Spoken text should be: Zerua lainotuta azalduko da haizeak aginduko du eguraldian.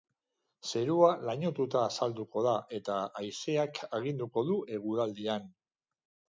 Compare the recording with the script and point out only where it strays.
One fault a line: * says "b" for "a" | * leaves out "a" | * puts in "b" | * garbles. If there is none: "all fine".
* puts in "eta"